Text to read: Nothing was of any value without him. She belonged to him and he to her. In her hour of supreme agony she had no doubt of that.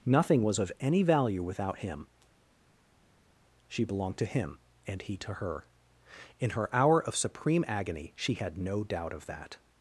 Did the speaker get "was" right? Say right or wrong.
right